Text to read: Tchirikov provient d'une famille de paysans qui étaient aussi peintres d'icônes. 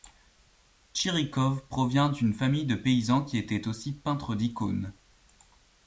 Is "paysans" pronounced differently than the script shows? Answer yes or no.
no